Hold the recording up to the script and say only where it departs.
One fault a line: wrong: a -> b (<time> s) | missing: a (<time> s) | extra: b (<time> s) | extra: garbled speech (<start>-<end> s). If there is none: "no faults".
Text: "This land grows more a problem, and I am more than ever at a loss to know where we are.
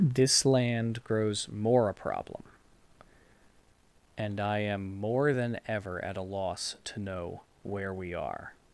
no faults